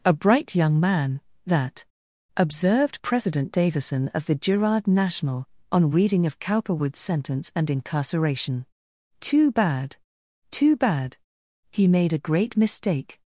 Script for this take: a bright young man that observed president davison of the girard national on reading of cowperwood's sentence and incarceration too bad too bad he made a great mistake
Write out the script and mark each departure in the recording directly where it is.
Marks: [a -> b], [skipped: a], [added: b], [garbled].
a bright young man that observed president davison of the girard national on reading of cowperwood's sentence and incarceration too bad too bad he made a great mistake